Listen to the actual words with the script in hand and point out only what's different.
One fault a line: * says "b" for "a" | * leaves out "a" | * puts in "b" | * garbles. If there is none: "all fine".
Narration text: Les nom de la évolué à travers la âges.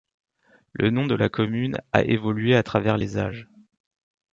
* says "Le" for "Les"
* puts in "commune a"
* says "les" for "la"